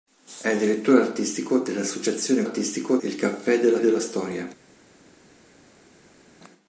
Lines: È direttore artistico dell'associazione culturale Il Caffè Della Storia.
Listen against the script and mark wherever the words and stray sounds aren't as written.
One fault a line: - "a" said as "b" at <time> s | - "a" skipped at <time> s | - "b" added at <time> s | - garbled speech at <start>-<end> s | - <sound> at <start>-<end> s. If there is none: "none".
- "culturale" said as "artistico" at 2.4 s
- "Della" added at 3.8 s